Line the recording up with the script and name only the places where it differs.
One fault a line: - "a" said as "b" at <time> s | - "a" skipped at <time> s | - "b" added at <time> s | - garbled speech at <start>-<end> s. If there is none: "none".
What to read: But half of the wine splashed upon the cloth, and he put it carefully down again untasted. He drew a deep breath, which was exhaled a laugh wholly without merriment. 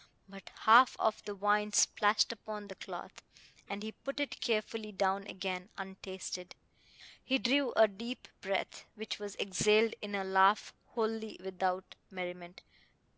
- "in" added at 10.0 s